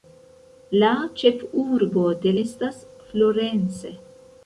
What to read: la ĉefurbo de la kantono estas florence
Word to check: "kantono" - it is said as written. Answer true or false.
false